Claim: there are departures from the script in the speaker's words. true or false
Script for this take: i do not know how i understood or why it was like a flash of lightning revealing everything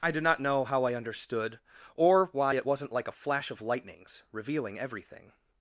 true